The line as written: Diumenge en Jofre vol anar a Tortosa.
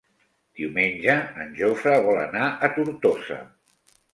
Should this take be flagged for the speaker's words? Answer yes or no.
no